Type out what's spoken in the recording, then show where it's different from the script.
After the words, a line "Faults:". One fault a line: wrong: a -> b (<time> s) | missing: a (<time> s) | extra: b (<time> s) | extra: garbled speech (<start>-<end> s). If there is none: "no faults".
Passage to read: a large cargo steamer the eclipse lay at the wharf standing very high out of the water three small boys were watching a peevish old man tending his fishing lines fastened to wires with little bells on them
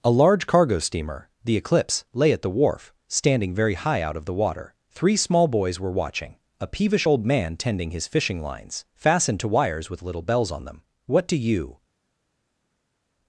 a large cargo steamer the eclipse lay at the wharf standing very high out of the water three small boys were watching a peevish old man tending his fishing lines fastened to wires with little bells on them what do you
Faults:
extra: what do you (11.1 s)